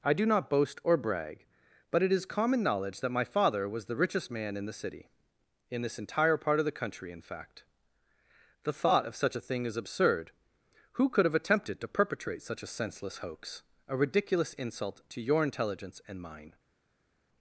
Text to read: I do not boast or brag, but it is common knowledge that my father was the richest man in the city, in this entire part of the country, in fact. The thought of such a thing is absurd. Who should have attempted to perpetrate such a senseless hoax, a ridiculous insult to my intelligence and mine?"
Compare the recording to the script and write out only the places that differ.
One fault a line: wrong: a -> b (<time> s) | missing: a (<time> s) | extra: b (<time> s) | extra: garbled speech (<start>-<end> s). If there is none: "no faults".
wrong: should -> could (11.1 s)
wrong: my -> your (15.2 s)